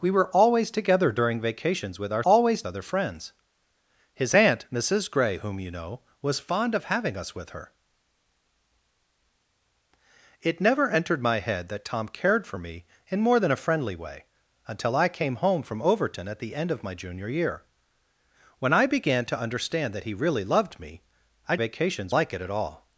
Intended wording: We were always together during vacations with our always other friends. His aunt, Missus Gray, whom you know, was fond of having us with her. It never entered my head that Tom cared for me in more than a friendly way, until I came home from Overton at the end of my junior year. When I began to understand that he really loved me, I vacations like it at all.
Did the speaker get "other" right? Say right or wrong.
right